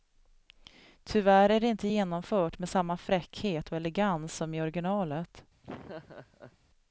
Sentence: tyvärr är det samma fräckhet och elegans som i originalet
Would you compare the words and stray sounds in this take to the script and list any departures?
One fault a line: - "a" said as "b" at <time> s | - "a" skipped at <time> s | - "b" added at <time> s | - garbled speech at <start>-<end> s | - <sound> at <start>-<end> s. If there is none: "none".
- "inte genomfört med" added at 1.7 s
- laugh at 5.6-6.6 s